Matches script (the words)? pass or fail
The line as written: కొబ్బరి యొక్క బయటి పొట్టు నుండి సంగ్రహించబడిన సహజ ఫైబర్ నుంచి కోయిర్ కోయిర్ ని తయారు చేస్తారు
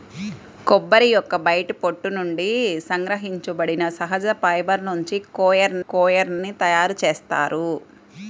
pass